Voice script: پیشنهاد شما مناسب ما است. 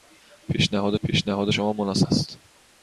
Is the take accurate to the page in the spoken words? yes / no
no